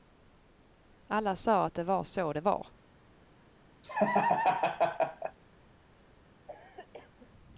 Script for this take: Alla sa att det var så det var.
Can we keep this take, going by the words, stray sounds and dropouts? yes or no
no